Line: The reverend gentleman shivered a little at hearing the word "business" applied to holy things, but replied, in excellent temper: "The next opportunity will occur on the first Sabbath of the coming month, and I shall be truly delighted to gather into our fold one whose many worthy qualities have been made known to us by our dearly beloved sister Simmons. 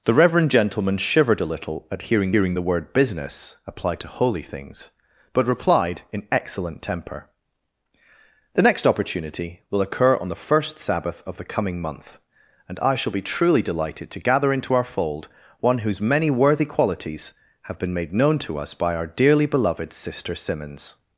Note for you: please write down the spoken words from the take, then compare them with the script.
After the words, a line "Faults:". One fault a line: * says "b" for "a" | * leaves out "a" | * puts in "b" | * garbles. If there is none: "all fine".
The reverend gentleman shivered a little at hearing hearing the word "business" applied to holy things, but replied, in excellent temper: "The next opportunity will occur on the first Sabbath of the coming month, and I shall be truly delighted to gather into our fold one whose many worthy qualities have been made known to us by our dearly beloved sister Simmons.
Faults:
* puts in "hearing"